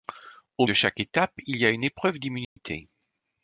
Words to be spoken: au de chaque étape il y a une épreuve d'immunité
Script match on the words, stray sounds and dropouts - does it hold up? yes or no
no